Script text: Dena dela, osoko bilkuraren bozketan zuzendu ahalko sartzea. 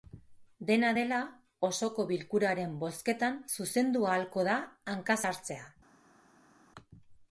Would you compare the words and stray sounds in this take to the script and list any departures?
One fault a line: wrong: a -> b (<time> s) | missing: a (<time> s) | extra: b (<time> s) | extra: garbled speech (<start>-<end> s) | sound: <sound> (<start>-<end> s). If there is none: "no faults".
extra: da hanka (4.5 s)